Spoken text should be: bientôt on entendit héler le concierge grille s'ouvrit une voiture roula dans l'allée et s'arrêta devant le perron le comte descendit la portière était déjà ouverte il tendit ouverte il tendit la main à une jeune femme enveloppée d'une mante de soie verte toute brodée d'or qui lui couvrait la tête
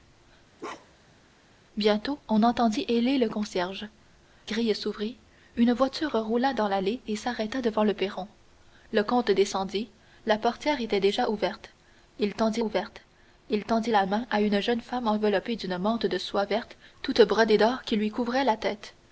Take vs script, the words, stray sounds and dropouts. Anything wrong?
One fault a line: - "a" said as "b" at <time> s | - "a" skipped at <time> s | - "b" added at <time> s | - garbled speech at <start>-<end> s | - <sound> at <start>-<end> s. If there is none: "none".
- bark at 0.6-1.2 s